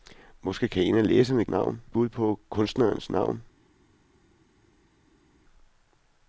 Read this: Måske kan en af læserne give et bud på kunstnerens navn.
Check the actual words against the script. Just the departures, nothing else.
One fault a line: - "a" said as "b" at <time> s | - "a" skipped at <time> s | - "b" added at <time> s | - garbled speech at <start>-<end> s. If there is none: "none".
- "give" said as "navn" at 1.5 s